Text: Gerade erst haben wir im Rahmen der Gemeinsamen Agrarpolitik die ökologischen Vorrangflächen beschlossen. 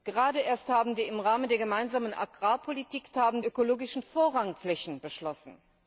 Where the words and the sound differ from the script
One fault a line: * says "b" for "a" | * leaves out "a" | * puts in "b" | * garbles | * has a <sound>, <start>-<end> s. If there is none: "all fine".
* says "haben" for "die"